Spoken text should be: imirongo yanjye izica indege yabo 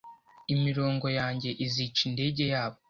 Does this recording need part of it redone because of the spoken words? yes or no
no